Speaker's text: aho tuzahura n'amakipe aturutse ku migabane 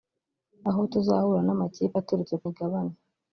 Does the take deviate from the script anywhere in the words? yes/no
no